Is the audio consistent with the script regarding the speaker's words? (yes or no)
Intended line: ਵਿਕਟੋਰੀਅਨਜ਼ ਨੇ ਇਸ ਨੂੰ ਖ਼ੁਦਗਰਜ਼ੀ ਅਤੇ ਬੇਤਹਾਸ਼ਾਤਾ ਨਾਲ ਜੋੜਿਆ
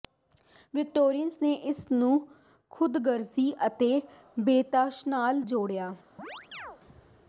yes